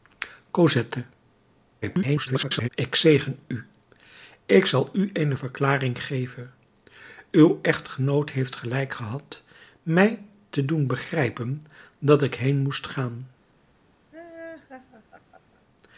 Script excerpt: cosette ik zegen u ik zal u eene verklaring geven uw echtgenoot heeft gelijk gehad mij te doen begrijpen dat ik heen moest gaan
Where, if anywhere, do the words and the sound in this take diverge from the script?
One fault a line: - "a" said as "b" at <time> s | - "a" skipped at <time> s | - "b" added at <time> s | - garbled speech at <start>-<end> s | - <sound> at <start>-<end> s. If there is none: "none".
- garbled speech at 1.8-2.7 s
- laugh at 14.1-15.6 s